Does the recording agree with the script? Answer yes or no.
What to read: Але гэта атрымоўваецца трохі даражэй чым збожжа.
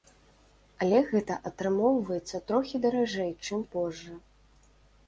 yes